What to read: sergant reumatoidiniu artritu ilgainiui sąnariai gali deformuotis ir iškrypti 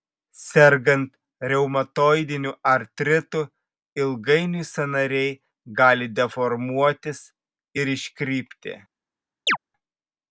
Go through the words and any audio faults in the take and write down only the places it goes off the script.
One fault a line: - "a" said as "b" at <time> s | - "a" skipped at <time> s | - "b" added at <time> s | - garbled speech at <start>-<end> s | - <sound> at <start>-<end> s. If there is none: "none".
- chirp at 9.5-9.6 s